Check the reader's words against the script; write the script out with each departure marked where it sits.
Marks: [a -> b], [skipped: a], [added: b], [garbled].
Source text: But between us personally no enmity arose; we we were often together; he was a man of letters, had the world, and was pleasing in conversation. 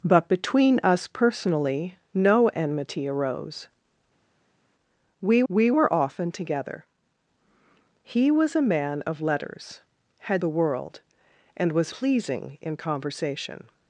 But between us personally no enmity arose; we we were often together; he was a man of letters, had the world, and was pleasing in conversation.